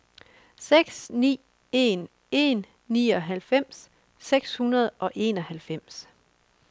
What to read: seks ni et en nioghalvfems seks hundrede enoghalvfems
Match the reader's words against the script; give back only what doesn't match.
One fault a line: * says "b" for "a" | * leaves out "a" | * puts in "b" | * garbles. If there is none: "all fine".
* says "en" for "et"
* puts in "og"